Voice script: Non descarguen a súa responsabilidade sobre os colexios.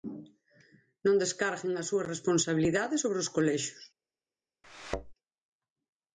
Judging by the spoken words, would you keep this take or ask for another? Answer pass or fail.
pass